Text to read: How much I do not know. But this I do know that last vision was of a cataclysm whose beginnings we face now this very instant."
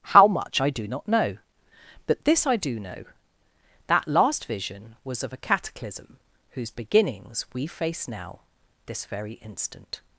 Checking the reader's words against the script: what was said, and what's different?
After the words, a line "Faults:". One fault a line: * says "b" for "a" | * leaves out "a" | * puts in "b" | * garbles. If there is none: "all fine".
How much I do not know. But this I do know that last vision was of a cataclysm whose beginnings we face now this very instant."
Faults:
all fine